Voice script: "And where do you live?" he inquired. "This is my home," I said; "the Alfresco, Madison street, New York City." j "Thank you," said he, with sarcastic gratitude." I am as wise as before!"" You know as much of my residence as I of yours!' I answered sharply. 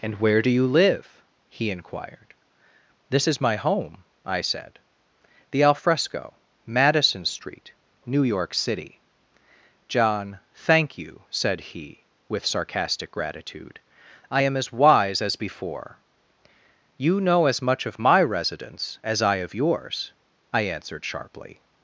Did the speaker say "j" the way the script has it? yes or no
no